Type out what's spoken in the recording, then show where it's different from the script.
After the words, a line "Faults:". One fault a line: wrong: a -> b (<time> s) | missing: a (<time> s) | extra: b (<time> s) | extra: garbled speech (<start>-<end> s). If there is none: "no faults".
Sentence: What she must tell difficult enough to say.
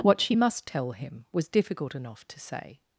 What she must tell him was difficult enough to say.
Faults:
extra: him was (0.9 s)